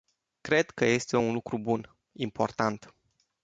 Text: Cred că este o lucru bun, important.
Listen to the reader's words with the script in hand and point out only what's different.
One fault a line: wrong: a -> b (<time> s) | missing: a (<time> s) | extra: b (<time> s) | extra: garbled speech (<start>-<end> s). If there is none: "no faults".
wrong: o -> un (1.2 s)